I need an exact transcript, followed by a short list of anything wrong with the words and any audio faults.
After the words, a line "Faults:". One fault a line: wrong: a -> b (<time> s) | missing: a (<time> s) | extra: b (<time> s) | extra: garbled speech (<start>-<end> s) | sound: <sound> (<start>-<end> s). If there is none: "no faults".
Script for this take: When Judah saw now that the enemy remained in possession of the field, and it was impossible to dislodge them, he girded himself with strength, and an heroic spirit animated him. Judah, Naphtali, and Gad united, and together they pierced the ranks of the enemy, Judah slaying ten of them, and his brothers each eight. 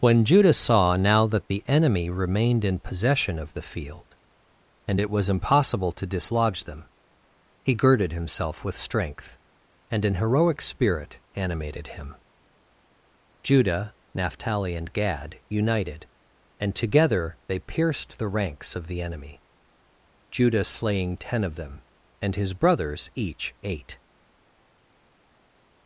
When Judah saw now that the enemy remained in possession of the field, and it was impossible to dislodge them, he girded himself with strength, and an heroic spirit animated him. Judah, Naphtali, and Gad united, and together they pierced the ranks of the enemy, Judah slaying ten of them, and his brothers each eight.
Faults:
no faults